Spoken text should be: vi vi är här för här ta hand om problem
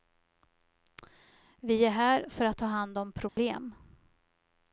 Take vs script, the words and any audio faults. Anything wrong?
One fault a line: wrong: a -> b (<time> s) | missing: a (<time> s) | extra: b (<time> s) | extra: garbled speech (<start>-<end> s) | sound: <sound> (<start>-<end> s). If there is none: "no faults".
missing: vi (1.9 s)
wrong: här -> att (2.5 s)
sound: dropout (3.3-3.4 s)